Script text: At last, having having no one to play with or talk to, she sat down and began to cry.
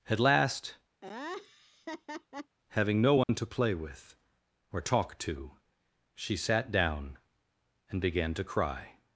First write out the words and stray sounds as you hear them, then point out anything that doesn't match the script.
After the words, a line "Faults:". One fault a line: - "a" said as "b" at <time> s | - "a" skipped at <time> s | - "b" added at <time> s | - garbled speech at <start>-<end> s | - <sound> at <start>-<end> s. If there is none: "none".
At last, having no one to play with or talk to, she sat down and began to cry.
Faults:
- laugh at 1.0-2.6 s
- "having" skipped at 3.0 s
- dropout at 3.2-3.3 s